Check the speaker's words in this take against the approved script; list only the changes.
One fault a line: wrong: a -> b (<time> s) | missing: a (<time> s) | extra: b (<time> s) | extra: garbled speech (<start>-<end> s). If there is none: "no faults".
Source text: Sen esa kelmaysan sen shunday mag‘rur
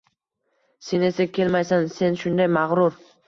no faults